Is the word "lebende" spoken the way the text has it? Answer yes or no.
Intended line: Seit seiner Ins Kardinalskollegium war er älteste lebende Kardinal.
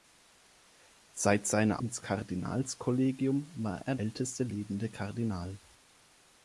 yes